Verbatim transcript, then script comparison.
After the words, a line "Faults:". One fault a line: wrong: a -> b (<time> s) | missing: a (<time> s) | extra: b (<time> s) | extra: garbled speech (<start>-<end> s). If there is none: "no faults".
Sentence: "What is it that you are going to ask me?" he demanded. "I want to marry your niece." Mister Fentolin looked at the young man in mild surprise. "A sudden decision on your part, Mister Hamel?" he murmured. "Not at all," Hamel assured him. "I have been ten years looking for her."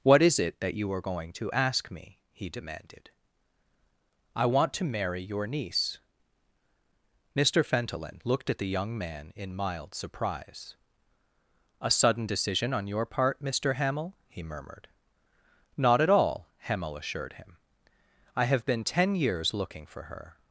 "What is it that you are going to ask me?" he demanded. "I want to marry your niece." Mister Fentolin looked at the young man in mild surprise. "A sudden decision on your part, Mister Hamel?" he murmured. "Not at all," Hamel assured him. "I have been ten years looking for her."
Faults:
no faults